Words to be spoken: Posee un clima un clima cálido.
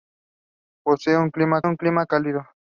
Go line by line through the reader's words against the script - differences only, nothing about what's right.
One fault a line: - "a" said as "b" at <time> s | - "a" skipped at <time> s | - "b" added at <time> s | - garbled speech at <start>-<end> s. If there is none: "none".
none